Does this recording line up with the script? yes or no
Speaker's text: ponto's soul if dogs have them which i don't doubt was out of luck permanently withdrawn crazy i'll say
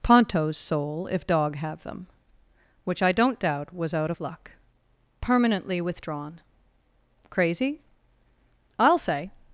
no